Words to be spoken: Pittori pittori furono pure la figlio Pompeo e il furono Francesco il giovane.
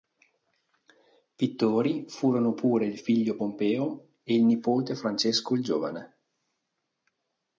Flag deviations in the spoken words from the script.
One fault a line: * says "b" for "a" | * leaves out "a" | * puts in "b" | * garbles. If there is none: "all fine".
* leaves out "pittori"
* says "il" for "la"
* says "nipote" for "furono"